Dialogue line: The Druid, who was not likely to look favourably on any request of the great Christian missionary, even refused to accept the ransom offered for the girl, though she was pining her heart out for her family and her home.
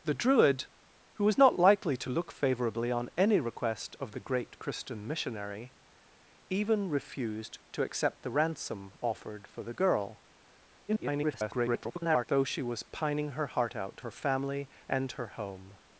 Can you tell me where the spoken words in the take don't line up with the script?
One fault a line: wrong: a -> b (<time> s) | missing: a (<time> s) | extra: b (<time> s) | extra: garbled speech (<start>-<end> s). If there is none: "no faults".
extra: garbled speech (10.9-12.3 s)
missing: for (14.0 s)